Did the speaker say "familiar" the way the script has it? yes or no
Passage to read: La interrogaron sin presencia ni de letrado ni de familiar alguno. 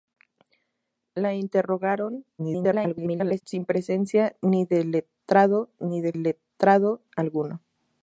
no